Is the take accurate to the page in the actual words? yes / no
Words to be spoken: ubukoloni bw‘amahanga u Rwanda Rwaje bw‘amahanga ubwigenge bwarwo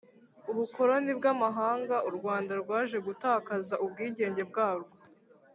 no